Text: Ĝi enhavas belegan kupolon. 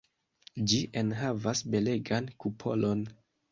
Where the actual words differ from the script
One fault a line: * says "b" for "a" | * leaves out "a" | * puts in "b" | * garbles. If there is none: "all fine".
all fine